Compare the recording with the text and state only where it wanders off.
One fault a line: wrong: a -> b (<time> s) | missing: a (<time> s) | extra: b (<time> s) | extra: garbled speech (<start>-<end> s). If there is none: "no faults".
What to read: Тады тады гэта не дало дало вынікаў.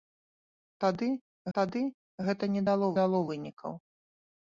no faults